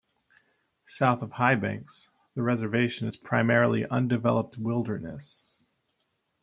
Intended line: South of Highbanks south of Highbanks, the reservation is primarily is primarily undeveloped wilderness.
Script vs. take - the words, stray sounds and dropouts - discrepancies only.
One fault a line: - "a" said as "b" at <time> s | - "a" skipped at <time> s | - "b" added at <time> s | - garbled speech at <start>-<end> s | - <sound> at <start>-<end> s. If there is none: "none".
- "south of Highbanks" skipped at 2.1 s
- "is primarily" skipped at 3.8 s